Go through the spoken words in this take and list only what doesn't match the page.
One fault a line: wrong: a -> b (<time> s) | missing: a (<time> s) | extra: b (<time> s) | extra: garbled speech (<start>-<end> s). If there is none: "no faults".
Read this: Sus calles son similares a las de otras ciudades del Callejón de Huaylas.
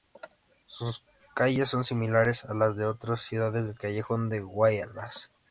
no faults